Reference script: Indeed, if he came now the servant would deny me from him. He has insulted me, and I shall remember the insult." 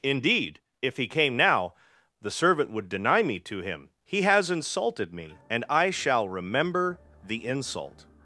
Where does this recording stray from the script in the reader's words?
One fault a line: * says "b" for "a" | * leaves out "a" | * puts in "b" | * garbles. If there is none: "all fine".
* says "to" for "from"